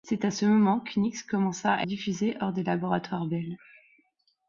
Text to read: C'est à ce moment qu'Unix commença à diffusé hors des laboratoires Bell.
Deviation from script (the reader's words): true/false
false